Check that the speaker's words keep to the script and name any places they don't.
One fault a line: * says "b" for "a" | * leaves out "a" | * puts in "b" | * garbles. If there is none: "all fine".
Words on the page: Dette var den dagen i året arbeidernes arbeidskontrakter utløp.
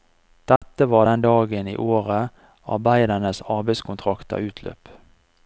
all fine